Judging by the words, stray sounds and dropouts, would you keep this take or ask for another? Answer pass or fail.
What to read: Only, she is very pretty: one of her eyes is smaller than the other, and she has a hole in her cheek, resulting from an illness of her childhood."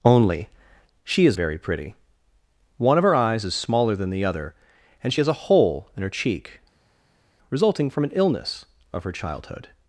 pass